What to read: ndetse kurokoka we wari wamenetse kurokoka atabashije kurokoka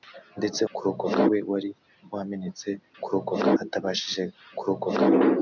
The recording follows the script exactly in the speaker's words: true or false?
true